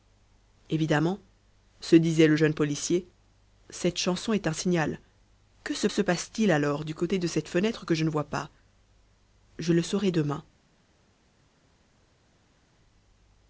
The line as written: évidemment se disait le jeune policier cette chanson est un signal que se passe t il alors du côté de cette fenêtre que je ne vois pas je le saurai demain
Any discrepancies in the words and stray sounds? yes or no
yes